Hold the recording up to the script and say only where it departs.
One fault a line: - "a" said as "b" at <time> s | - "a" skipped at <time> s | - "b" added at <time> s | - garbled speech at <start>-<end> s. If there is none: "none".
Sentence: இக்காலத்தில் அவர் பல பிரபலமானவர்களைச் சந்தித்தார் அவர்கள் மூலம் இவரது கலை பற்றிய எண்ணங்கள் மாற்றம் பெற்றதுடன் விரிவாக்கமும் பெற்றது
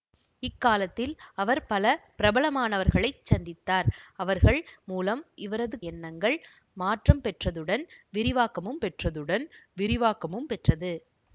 - "கலை பற்றிய எண்ணங்கள் மாற்றம்" said as "எண்ணங்கள் மாற்றம் பெற்றதுடன் விரிவாக்கமும்" at 5.9 s